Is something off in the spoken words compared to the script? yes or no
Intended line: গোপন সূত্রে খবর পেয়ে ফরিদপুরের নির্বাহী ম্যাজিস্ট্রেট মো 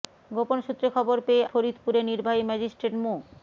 no